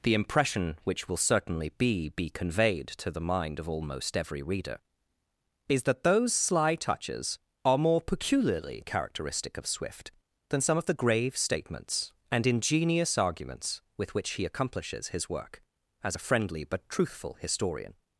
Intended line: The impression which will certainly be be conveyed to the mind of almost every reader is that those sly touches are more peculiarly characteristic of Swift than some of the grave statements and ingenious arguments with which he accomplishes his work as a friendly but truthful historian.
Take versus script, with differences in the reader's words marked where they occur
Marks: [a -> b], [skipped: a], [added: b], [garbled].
The impression which will certainly be be conveyed to the mind of almost every reader is that those sly touches are more peculiarly characteristic of Swift than some of the grave statements and ingenious arguments with which he accomplishes his work as a friendly but truthful historian.